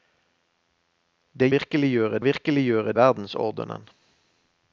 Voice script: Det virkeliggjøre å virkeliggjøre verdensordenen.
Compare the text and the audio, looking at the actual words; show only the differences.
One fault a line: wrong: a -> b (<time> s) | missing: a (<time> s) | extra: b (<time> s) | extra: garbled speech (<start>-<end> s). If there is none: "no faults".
no faults